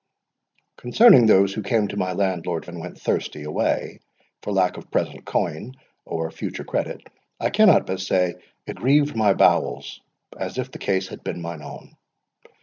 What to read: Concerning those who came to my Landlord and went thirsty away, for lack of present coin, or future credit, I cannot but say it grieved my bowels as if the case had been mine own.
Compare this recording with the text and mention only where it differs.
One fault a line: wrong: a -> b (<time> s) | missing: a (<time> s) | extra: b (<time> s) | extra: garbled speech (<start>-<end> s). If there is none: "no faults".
no faults